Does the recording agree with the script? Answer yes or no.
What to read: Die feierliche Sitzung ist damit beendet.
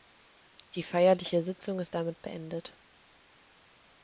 yes